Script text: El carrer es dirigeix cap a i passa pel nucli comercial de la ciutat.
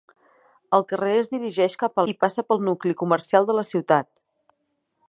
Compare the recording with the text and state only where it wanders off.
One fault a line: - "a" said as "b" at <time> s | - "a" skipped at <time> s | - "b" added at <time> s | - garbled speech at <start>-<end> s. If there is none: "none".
none